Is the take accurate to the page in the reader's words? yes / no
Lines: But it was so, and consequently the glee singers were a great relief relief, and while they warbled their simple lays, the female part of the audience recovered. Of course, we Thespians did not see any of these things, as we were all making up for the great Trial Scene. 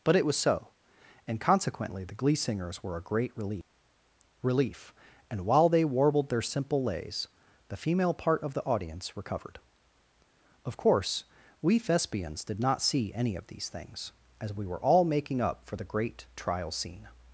yes